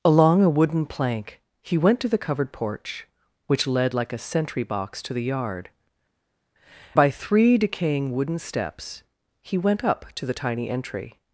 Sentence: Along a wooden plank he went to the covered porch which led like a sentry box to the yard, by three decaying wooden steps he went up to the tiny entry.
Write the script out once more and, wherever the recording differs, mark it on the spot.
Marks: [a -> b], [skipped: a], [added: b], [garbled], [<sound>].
Along a wooden plank he went to the covered porch which led like a sentry box to the yard, by three decaying wooden steps he went up to the tiny entry.